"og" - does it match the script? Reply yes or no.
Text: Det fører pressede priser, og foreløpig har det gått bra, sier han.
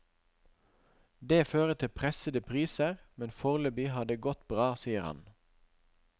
no